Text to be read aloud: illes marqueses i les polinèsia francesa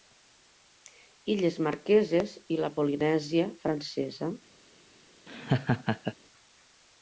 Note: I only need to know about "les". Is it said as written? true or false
false